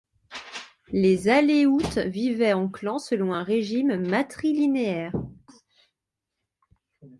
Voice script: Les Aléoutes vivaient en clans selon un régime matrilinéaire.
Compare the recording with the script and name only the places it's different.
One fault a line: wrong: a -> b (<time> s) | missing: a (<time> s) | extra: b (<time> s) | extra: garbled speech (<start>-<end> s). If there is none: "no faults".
no faults